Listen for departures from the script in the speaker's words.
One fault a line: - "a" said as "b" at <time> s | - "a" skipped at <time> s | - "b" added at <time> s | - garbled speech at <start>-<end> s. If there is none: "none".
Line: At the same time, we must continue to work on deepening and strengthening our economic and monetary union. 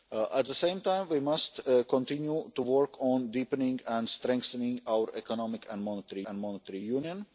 - "and monetary" added at 6.3 s